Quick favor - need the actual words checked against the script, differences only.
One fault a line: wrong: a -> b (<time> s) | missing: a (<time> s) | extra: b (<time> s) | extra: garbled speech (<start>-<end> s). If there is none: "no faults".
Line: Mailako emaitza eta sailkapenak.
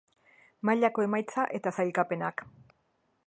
no faults